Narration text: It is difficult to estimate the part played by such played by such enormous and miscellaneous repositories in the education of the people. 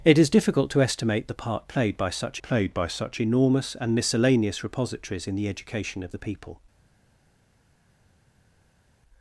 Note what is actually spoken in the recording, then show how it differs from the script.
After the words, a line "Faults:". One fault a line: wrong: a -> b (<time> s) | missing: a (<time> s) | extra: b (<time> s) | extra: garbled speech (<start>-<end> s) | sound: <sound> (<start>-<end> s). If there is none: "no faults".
It is difficult to estimate the part played by such played by such enormous and miscellaneous repositories in the education of the people.
Faults:
no faults